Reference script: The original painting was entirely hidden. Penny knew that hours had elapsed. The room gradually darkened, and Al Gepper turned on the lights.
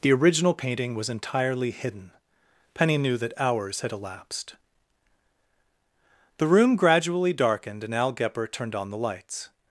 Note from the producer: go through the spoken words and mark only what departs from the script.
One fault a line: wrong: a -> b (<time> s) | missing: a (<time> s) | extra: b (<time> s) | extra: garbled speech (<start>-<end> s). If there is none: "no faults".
no faults